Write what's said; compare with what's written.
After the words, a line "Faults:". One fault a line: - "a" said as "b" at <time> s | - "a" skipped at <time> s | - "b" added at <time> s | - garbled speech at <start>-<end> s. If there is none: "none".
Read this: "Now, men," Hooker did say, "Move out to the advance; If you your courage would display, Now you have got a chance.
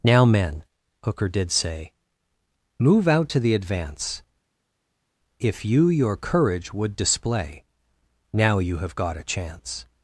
"Now, men," Hooker did say, "Move out to the advance; If you your courage would display, Now you have got a chance.
Faults:
none